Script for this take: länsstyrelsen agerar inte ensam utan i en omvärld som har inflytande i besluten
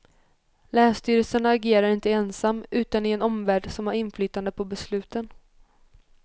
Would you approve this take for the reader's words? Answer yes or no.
no